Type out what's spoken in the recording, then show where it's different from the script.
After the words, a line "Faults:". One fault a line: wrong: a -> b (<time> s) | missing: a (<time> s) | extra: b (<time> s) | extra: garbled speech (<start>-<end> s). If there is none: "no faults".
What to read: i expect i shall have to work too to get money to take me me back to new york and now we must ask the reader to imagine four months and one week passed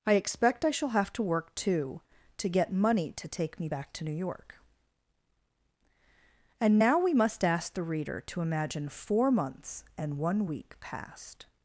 i expect i shall have to work too to get money to take me back to new york and now we must ask the reader to imagine four months and one week passed
Faults:
missing: me (3.7 s)